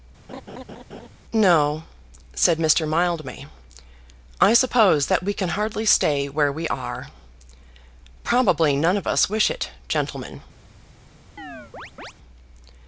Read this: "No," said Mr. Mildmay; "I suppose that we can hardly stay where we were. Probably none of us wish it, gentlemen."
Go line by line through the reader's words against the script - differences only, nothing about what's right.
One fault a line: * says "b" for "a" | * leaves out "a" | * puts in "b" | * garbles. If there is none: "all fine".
* says "are" for "were"